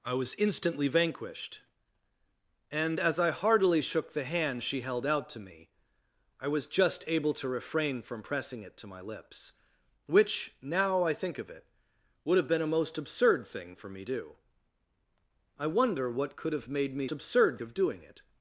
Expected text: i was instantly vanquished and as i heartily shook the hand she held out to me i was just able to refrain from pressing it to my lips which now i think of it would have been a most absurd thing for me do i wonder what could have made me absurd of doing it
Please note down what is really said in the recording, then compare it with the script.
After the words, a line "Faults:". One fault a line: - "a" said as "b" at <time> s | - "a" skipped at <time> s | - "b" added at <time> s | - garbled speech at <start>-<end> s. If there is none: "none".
i was instantly vanquished and as i heartily shook the hand she held out to me i was just able to refrain from pressing it to my lips which now i think of it would have been a most absurd thing for me do i wonder what could have made me absurd of doing it
Faults:
none